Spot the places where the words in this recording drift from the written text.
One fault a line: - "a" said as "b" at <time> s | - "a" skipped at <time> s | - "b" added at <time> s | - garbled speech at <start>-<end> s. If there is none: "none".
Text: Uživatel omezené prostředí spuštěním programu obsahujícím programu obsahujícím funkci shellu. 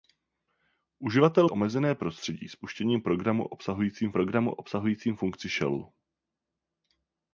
none